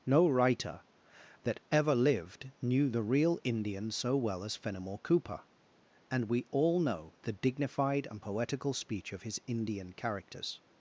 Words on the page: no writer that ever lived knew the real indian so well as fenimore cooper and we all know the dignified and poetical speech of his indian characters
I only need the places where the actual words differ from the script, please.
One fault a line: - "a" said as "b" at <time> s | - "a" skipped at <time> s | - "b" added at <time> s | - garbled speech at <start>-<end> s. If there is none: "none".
none